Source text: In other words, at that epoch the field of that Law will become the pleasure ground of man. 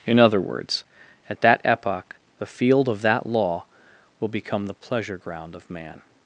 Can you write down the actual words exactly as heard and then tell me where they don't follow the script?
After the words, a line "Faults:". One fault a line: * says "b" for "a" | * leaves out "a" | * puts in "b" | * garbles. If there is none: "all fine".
In other words, at that epoch the field of that Law will become the pleasure ground of man.
Faults:
all fine